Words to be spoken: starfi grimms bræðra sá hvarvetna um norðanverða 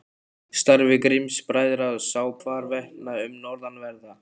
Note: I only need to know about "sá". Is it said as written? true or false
true